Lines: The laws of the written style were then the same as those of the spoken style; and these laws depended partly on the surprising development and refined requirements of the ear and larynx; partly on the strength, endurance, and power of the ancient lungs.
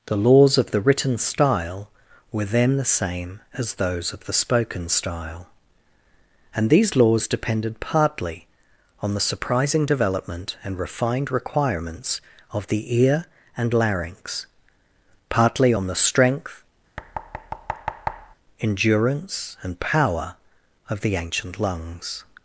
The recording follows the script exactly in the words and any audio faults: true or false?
false